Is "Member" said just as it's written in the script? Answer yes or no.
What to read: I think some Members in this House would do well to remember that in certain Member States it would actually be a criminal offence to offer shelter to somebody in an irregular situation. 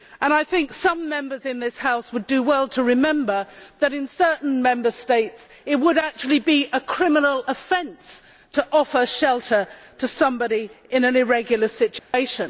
yes